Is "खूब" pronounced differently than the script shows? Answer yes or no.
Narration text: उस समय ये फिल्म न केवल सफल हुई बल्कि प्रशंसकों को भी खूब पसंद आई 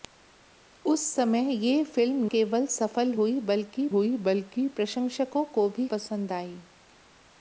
yes